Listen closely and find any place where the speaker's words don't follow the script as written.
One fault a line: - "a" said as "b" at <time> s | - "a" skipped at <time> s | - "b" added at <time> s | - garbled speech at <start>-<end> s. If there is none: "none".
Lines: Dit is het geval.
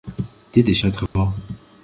none